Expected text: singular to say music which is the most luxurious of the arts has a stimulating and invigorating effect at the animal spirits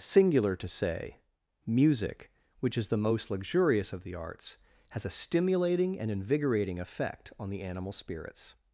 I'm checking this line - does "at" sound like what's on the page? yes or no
no